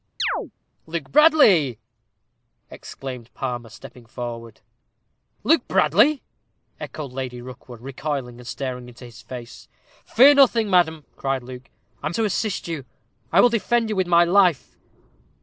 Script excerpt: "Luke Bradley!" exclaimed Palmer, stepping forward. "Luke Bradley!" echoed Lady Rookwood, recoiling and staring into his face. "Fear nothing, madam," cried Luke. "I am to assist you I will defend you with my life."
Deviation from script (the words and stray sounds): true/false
true